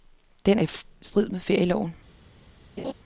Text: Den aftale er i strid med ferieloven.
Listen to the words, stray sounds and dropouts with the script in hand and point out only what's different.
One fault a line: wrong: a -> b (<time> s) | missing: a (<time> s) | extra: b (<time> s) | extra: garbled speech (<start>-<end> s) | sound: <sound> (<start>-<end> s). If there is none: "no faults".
missing: aftale (0.6 s)
sound: laugh (2.8-2.9 s)